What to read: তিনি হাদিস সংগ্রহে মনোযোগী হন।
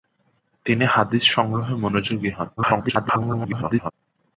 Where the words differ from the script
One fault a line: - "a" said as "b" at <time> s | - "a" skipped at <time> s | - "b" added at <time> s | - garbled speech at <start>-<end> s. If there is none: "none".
- garbled speech at 2.6-3.9 s